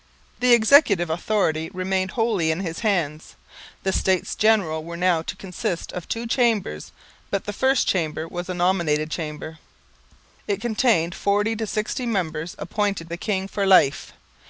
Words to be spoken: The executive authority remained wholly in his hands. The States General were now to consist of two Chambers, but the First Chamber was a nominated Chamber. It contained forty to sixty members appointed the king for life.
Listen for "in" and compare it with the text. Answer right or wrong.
right